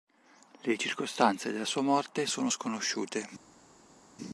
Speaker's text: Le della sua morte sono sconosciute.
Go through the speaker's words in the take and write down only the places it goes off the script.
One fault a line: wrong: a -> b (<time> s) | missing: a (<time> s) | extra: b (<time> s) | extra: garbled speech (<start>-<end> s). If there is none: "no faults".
extra: circostanze (0.8 s)